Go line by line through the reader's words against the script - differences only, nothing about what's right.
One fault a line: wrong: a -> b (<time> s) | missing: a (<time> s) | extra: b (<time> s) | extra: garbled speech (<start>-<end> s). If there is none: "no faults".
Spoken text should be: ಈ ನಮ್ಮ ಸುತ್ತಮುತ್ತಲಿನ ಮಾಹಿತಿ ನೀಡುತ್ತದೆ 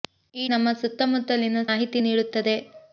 no faults